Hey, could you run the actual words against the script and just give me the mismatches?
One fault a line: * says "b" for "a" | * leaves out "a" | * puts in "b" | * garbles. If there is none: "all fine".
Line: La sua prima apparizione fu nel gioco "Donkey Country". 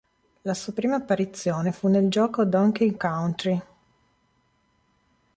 all fine